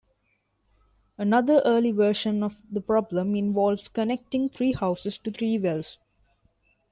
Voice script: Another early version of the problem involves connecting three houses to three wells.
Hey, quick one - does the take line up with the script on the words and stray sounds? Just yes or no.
yes